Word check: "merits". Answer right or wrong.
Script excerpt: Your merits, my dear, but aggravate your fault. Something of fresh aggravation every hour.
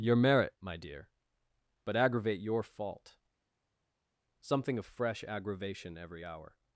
wrong